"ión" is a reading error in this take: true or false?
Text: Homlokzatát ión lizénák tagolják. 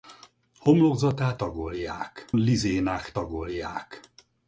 true